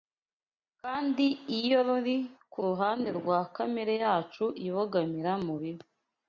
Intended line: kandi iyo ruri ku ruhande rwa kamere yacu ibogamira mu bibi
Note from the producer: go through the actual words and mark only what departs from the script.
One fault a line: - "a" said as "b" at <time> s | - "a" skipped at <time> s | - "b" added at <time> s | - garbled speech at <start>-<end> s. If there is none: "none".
none